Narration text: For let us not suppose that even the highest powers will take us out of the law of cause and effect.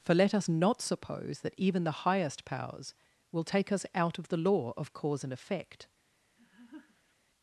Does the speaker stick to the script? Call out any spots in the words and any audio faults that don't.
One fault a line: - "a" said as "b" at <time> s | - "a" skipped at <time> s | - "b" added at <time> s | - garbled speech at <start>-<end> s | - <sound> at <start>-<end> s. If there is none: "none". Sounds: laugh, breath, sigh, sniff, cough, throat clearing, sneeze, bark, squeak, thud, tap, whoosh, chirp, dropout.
- laugh at 6.4-7.2 s